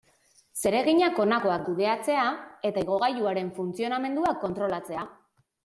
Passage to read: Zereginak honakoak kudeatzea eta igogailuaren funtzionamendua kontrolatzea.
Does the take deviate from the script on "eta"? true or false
false